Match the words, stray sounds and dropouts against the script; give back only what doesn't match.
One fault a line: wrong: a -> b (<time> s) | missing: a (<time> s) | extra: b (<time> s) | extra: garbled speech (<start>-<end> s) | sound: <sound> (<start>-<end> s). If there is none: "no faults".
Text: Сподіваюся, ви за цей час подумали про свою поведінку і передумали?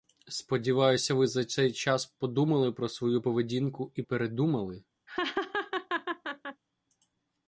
sound: laugh (5.1-6.6 s)